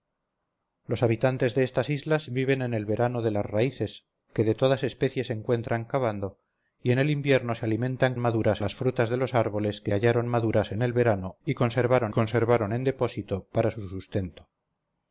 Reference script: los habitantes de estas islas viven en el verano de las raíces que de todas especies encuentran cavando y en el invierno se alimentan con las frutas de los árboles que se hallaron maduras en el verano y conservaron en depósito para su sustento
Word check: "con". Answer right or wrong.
wrong